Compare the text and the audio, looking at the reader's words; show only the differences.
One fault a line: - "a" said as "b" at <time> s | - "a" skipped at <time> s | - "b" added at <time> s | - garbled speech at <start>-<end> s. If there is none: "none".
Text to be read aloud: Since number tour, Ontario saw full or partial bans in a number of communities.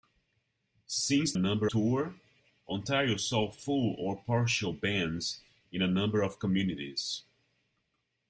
none